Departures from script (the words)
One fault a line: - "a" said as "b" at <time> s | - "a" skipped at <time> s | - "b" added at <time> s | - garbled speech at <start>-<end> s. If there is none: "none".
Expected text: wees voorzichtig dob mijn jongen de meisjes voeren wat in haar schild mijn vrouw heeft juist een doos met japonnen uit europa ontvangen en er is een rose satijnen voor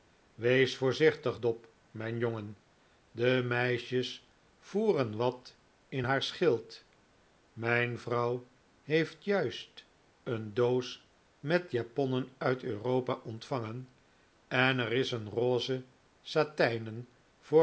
none